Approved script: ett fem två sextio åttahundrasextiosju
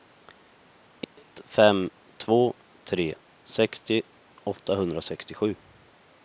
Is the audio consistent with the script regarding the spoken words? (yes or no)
no